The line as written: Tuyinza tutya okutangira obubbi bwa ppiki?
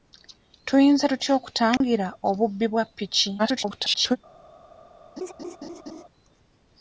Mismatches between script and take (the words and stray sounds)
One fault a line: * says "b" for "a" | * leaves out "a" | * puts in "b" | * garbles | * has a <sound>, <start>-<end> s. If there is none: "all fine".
* has a dropout, 1.8-1.8 s
* garbles
* has a laugh, 5.2-6.0 s